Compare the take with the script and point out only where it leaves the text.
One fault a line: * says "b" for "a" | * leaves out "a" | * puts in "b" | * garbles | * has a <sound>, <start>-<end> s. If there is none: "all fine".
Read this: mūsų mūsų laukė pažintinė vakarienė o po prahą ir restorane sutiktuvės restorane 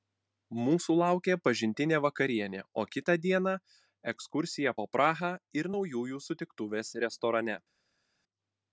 * leaves out "mūsų"
* puts in "kitą dieną ekskursija"
* says "naujųjų" for "restorane"